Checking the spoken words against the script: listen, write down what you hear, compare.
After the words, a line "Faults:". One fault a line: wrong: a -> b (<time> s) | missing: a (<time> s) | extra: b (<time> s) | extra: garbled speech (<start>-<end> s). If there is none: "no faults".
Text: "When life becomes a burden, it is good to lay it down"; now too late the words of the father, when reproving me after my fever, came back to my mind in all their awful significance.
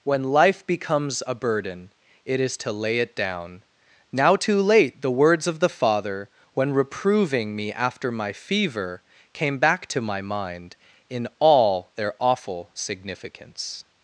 "When life becomes a burden, it is to lay it down"; now too late the words of the father, when reproving me after my fever, came back to my mind in all their awful significance.
Faults:
missing: good (2.6 s)